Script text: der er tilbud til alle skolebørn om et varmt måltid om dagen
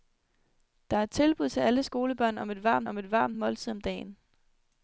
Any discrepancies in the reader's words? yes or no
yes